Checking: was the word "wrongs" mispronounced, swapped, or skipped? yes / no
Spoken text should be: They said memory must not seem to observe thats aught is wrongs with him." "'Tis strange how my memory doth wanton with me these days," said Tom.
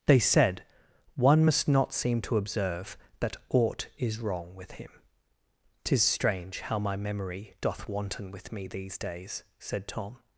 yes